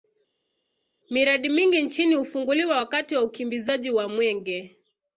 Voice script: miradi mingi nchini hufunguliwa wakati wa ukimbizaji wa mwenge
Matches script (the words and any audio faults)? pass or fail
pass